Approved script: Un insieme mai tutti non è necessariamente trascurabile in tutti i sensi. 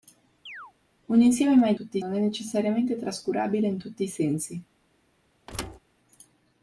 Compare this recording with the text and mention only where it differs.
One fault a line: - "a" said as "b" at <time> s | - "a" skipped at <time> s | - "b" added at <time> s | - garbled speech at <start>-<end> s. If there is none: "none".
none